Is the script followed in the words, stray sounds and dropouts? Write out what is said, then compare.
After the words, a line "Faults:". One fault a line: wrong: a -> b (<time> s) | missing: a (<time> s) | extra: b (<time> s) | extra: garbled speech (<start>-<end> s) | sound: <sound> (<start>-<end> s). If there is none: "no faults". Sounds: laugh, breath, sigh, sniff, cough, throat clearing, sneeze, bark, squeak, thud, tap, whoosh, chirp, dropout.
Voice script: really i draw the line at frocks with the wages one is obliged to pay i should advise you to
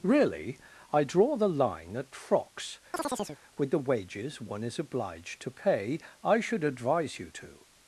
really i draw the line at frocks with the wages one is obliged to pay i should advise you to
Faults:
sound: chirp (2.9-3.4 s)